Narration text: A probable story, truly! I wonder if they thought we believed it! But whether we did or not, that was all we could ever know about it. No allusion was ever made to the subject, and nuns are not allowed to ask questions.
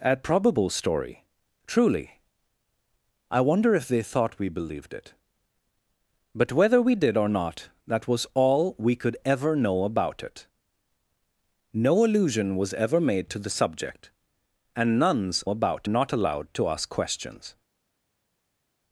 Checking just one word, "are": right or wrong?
wrong